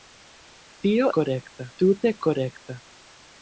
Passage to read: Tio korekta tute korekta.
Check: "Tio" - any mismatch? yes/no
no